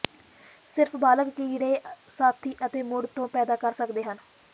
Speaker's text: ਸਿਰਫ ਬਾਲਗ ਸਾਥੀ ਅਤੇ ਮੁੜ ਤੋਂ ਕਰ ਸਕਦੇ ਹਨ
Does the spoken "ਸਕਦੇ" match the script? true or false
true